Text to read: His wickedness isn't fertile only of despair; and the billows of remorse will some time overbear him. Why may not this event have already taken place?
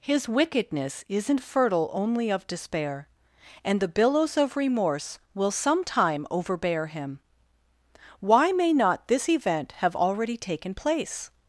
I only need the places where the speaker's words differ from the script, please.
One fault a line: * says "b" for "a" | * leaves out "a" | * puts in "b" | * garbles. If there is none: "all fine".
all fine